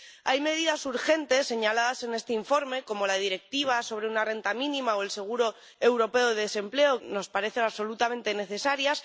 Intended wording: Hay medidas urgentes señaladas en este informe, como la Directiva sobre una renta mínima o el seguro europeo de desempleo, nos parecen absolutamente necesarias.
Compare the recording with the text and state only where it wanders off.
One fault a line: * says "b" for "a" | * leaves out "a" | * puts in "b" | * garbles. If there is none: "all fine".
all fine